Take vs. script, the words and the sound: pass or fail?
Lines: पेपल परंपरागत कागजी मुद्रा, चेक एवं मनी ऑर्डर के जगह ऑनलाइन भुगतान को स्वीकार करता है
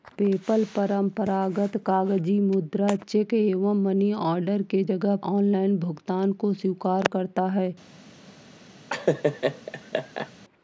fail